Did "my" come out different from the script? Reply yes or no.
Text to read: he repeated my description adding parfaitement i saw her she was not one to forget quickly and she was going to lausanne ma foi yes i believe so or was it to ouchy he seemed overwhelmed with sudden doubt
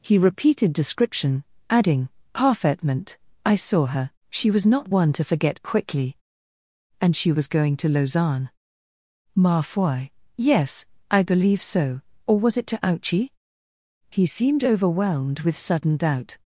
yes